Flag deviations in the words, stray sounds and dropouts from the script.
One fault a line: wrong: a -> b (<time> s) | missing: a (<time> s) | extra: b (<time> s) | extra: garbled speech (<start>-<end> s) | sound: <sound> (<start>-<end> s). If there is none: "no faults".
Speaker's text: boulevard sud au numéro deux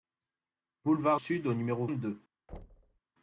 sound: thud (2.5-3.0 s)